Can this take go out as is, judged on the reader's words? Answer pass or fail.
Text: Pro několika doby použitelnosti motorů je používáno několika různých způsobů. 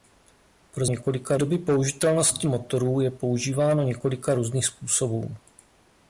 pass